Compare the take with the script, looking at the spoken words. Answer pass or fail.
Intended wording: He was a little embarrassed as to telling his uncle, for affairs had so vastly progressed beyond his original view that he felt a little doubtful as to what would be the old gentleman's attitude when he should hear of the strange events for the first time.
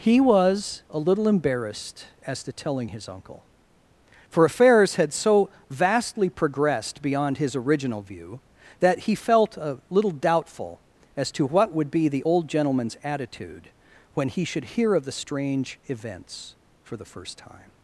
pass